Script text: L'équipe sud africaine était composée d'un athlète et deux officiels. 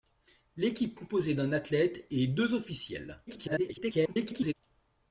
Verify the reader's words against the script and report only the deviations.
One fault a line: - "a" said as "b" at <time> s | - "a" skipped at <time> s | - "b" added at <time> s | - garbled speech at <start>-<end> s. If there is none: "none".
- "sud africaine était" skipped at 1.0 s
- garbled speech at 3.3-4.5 s